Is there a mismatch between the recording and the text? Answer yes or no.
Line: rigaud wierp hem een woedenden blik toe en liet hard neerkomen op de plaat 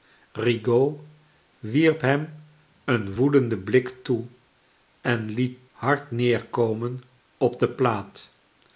no